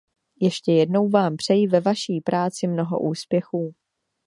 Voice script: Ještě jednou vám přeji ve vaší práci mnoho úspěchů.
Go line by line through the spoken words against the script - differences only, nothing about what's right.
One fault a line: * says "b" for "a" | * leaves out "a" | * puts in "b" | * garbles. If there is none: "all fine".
all fine